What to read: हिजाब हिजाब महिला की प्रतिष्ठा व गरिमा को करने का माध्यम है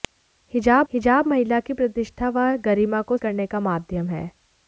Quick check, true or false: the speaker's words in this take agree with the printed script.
true